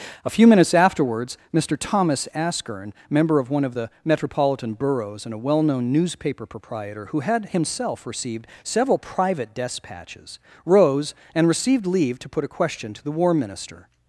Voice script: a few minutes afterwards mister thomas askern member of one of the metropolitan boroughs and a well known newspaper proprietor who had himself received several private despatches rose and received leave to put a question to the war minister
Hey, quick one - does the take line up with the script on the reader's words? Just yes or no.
yes